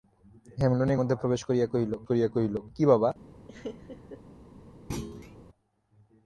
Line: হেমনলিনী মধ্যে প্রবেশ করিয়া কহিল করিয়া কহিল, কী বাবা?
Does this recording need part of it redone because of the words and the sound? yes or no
yes